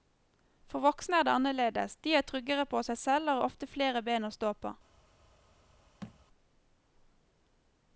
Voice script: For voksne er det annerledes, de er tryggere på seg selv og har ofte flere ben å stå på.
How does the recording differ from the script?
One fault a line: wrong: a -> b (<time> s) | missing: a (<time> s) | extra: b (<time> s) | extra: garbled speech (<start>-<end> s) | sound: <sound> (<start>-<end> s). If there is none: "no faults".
sound: thud (6.0-6.2 s)